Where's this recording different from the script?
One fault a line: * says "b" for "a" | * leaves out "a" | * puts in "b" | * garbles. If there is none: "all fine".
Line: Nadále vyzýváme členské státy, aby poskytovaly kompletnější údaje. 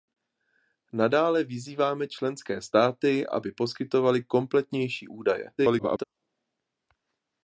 * garbles